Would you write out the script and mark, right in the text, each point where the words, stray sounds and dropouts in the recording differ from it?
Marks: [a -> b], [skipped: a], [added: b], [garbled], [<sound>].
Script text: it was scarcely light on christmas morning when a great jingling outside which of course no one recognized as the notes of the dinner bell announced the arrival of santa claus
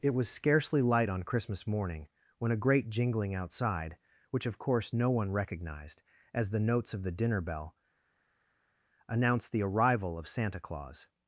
it was scarcely light on christmas morning when a great jingling outside which of course no one recognized as the notes of the dinner bell announced the arrival of santa claus